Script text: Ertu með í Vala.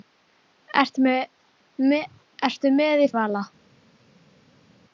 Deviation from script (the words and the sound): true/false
false